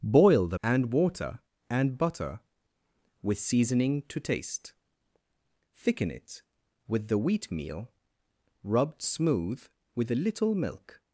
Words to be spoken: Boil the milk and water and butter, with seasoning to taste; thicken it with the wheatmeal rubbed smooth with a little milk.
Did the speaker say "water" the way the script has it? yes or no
yes